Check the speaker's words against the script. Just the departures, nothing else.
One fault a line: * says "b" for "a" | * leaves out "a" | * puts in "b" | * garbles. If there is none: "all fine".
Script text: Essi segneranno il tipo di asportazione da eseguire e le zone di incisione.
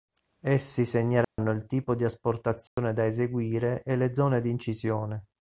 all fine